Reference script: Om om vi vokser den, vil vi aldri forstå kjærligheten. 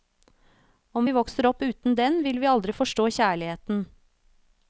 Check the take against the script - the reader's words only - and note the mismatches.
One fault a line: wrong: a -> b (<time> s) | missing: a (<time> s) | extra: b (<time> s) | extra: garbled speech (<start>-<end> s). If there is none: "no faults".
missing: om (1.1 s)
extra: opp uten (1.5 s)